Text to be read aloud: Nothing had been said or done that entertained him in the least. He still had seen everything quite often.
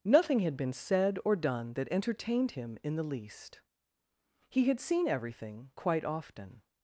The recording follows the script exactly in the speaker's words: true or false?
false